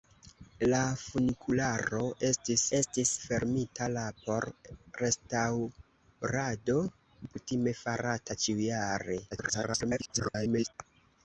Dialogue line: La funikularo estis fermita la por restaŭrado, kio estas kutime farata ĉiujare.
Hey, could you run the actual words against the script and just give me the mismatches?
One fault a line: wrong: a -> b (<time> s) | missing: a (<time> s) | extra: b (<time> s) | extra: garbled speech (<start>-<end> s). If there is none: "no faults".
extra: estis (2.8 s)
missing: kio estas (6.8 s)
extra: garbled speech (9.3-10.7 s)